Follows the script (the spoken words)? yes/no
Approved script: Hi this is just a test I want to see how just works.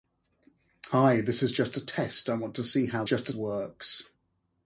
yes